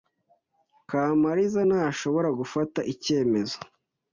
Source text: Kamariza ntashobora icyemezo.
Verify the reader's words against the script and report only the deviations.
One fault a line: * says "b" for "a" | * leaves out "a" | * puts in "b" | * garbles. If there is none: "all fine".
* puts in "gufata"